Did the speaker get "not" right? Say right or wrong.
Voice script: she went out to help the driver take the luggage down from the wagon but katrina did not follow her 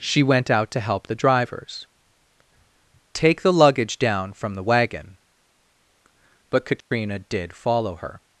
wrong